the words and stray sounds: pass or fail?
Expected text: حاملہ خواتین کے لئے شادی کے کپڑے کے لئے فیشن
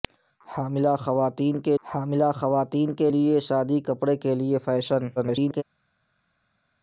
fail